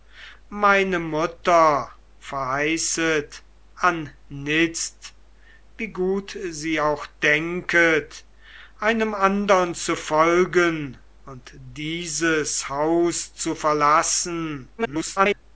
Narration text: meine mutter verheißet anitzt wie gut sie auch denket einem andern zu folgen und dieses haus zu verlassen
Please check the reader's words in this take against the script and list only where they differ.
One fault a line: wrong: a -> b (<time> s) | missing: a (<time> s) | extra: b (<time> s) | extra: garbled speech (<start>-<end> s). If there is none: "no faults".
extra: garbled speech (14.8-15.4 s)